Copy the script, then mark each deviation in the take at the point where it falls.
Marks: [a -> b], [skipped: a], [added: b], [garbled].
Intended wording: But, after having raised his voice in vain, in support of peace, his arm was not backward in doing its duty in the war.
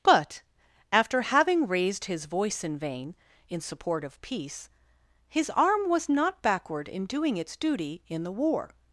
But, after having raised his voice in vain, in support of peace, his arm was not backward in doing its duty in the war.